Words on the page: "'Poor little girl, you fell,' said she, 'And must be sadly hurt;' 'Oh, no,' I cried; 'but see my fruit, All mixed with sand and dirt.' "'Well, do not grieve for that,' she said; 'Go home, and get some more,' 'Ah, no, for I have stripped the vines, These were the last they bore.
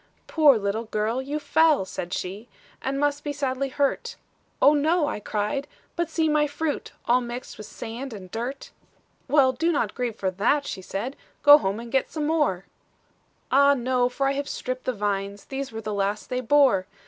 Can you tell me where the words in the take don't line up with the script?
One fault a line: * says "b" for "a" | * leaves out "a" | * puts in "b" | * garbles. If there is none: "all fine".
all fine